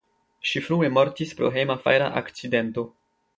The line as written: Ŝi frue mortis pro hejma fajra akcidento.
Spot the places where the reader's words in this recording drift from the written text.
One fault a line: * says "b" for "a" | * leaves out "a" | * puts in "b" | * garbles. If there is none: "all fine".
all fine